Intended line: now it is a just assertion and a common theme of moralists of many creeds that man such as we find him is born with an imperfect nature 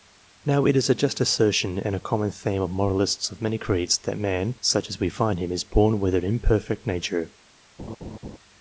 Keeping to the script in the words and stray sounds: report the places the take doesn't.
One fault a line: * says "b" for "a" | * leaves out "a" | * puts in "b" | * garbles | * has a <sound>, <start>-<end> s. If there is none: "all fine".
* has a laugh, 7.8-8.4 s